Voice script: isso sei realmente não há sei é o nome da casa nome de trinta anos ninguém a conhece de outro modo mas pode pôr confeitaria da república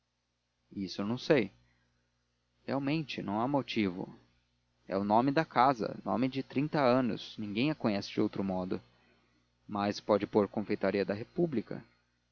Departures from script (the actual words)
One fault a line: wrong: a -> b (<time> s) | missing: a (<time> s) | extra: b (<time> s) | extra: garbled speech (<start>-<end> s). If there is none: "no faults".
extra: não (1.1 s)
wrong: sei -> motivo (3.5 s)